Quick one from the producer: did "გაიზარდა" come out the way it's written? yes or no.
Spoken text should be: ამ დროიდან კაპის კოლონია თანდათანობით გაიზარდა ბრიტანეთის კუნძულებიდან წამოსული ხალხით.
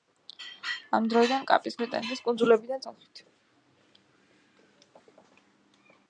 no